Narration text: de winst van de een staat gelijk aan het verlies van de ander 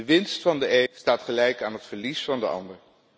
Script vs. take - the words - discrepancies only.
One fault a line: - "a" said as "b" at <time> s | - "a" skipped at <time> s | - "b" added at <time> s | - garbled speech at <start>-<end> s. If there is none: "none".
- "een" skipped at 0.8 s